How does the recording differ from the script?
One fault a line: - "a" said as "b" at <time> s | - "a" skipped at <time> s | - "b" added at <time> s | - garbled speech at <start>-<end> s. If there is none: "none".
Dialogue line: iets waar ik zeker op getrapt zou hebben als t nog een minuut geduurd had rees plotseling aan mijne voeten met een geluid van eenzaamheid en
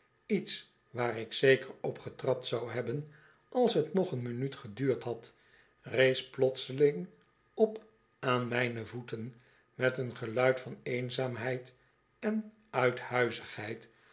- "op" added at 7.5 s